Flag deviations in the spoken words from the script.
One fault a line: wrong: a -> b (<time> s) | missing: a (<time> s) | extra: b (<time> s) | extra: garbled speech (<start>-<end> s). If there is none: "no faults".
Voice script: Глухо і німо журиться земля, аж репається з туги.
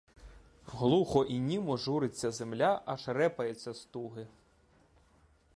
no faults